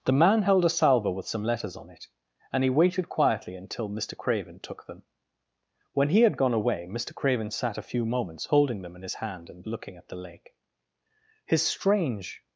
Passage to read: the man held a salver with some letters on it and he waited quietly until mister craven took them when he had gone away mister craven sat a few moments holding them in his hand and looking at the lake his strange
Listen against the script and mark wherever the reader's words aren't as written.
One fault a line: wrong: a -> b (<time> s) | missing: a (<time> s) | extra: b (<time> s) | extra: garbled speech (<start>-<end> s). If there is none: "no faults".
no faults